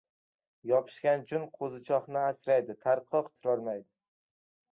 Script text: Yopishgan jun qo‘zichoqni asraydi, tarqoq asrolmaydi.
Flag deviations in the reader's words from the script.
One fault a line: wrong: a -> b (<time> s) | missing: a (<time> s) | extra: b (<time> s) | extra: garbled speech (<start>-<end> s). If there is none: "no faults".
no faults